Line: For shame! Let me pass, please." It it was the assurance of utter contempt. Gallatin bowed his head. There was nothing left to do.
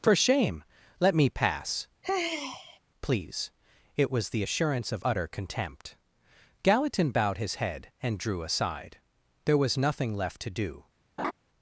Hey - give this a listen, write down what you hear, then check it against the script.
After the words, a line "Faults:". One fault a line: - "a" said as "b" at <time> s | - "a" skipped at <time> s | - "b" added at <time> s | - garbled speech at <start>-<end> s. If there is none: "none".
For shame! Let me pass, please." It was the assurance of utter contempt. Gallatin bowed his head and drew aside. There was nothing left to do.
Faults:
- "it" skipped at 4.1 s
- "and drew aside" added at 8.0 s